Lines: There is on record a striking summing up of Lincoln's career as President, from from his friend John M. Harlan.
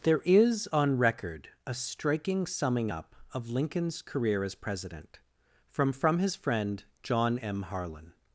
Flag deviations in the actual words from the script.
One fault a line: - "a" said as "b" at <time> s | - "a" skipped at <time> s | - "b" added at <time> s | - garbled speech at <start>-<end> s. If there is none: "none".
none